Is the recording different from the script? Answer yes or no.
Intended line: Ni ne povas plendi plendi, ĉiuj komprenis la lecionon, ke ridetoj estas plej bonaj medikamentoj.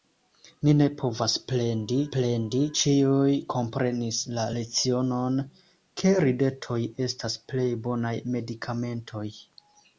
no